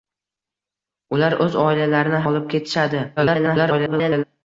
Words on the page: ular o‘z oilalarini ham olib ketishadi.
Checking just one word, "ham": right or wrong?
wrong